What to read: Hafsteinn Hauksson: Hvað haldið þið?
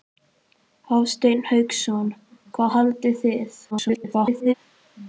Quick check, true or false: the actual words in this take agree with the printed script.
false